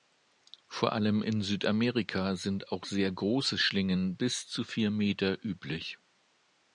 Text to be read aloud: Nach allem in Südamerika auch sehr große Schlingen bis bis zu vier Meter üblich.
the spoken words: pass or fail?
fail